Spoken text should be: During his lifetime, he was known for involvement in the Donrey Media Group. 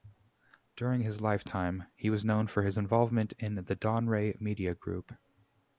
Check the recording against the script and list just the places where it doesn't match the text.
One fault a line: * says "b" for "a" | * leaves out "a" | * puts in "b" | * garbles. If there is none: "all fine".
* puts in "his"